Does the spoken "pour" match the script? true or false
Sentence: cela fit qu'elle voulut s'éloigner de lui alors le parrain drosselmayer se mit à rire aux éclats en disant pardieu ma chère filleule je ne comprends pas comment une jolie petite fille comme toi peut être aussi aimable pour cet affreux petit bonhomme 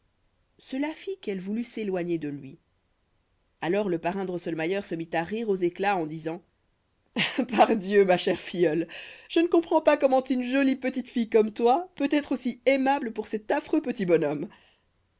true